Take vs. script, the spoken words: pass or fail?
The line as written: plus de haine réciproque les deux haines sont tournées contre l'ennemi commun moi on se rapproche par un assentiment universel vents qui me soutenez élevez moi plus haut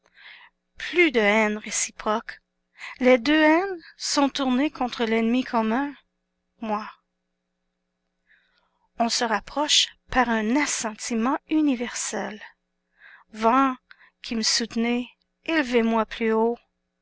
pass